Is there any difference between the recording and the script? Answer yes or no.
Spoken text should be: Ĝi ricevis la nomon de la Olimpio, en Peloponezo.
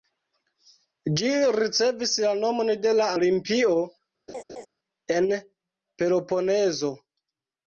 no